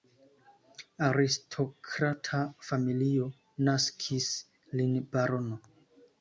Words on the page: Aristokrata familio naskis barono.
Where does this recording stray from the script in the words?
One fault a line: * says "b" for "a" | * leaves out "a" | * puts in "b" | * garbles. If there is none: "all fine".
* puts in "lin"